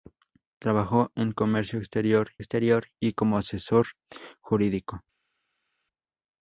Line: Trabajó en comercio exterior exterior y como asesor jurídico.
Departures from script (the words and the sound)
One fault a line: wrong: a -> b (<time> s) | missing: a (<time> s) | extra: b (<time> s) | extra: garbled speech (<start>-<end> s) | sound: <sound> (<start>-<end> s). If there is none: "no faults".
no faults